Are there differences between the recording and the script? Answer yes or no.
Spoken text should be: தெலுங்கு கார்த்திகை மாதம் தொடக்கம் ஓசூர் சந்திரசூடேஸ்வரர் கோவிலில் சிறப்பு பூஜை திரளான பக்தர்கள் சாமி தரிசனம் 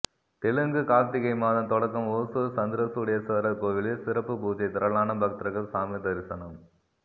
no